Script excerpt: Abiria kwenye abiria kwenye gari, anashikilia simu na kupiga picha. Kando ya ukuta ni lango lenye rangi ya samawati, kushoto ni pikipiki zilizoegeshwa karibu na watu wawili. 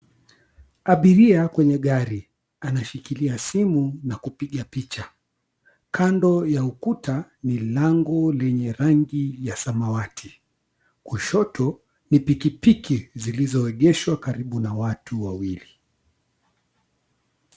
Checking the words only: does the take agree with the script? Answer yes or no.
no